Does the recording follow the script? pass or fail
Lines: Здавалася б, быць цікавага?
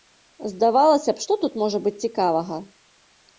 fail